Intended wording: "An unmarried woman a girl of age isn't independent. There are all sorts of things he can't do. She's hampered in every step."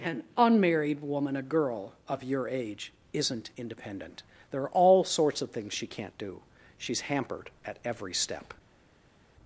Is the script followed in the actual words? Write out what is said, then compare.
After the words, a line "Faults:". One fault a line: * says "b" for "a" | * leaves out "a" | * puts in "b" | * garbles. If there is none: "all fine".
"An unmarried woman a girl of your age isn't independent. There are all sorts of things she can't do. She's hampered at every step."
Faults:
* puts in "your"
* says "she" for "he"
* says "at" for "in"